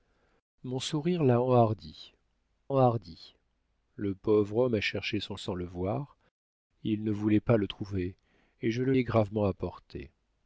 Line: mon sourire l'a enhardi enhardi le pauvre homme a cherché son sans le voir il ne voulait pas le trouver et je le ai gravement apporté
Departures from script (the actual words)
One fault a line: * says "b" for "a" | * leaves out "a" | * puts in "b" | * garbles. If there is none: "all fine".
all fine